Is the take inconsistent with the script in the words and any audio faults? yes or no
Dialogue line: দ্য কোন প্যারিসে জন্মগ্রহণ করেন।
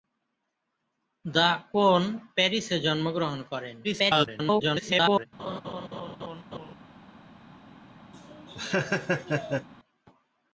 yes